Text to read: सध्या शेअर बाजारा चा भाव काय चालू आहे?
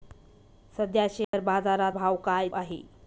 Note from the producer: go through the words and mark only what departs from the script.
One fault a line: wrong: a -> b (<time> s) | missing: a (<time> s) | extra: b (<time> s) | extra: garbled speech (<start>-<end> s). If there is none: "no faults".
missing: चा (1.9 s)
missing: चालू (2.5 s)